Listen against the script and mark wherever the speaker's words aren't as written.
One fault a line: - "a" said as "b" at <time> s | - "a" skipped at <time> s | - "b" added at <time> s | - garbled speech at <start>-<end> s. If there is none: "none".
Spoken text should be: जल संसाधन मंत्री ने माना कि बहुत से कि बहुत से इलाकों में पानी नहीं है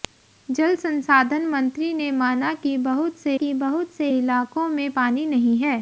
none